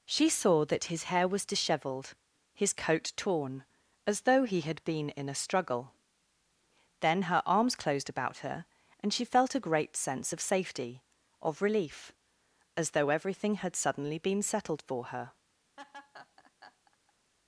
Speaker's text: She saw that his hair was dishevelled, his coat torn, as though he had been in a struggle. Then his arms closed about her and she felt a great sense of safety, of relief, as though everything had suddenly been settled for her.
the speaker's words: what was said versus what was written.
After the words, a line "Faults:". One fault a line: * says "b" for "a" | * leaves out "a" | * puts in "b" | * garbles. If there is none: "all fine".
She saw that his hair was dishevelled, his coat torn, as though he had been in a struggle. Then her arms closed about her and she felt a great sense of safety, of relief, as though everything had suddenly been settled for her.
Faults:
* says "her" for "his"